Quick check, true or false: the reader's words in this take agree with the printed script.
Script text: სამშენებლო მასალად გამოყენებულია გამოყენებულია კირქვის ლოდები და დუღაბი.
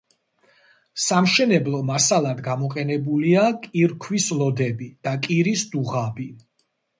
false